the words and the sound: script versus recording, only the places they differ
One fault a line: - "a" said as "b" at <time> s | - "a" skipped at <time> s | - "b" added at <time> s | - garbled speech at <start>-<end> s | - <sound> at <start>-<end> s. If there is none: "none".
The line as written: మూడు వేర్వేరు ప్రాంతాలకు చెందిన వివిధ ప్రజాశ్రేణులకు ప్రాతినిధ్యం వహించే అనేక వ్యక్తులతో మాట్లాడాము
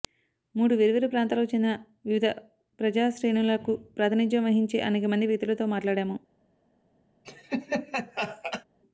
- "మంది" added at 5.1 s
- laugh at 7.2-8.6 s